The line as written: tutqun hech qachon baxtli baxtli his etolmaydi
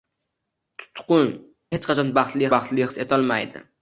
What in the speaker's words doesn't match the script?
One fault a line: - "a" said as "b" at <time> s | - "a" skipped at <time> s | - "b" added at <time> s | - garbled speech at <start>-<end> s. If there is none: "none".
none